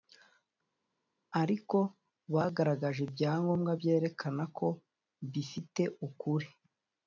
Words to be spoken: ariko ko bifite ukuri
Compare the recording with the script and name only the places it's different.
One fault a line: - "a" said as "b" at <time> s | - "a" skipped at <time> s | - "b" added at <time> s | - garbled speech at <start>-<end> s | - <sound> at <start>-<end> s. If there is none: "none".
- "bagaragaje ibyangombwa byerekana" added at 2.3 s